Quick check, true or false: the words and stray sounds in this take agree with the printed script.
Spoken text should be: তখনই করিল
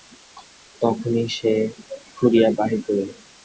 false